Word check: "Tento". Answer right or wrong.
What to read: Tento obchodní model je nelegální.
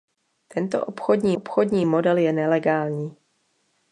right